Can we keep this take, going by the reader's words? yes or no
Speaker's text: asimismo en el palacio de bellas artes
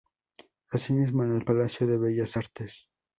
yes